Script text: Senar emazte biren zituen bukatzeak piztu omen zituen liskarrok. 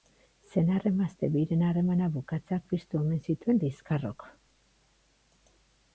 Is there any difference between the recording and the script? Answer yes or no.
yes